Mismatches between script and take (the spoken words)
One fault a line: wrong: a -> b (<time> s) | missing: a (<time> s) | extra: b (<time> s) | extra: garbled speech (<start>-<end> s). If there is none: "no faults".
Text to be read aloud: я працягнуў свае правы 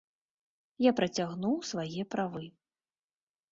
no faults